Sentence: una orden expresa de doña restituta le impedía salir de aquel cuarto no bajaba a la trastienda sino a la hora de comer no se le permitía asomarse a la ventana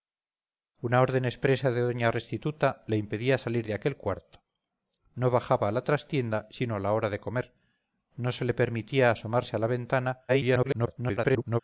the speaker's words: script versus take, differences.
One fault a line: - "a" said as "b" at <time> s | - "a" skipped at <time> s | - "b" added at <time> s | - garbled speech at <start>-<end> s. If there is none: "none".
- garbled speech at 10.3-11.6 s